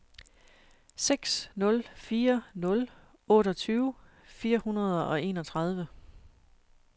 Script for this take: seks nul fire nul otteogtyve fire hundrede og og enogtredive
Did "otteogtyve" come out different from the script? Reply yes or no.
no